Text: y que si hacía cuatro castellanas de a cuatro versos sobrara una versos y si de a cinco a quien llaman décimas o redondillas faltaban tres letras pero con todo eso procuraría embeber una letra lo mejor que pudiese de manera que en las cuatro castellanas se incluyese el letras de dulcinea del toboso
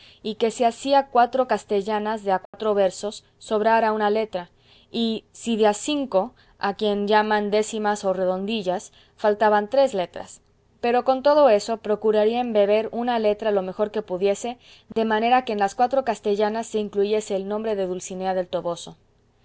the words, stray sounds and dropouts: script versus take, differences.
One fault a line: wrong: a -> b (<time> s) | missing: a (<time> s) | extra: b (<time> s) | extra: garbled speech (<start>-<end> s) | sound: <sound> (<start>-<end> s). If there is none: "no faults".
sound: dropout (2.5-2.5 s)
wrong: versos -> letra (4.1 s)
sound: dropout (14.9-15.0 s)
wrong: letras -> nombre (17.5 s)